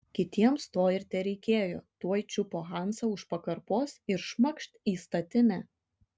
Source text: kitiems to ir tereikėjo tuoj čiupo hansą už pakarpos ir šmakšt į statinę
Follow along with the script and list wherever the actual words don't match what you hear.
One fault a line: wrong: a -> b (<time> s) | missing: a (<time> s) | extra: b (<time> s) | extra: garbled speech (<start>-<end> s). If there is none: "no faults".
no faults